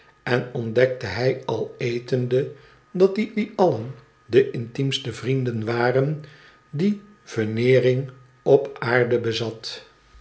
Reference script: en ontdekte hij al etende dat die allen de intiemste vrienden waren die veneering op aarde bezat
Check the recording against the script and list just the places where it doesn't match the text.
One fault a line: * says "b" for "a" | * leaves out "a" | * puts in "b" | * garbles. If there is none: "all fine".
* puts in "die"